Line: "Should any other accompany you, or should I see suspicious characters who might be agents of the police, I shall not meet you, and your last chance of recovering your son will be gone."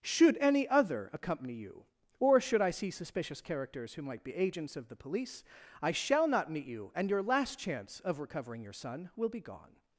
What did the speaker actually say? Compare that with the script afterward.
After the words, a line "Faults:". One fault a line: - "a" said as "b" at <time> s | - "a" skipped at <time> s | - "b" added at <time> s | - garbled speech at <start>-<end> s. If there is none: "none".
"Should any other accompany you, or should I see suspicious characters who might be agents of the police, I shall not meet you, and your last chance of recovering your son will be gone."
Faults:
none